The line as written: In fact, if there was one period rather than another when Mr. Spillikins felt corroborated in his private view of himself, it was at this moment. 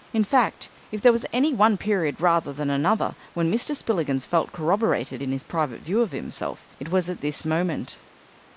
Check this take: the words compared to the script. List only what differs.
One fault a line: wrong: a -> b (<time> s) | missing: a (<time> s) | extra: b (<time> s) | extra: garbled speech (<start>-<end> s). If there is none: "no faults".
extra: any (1.3 s)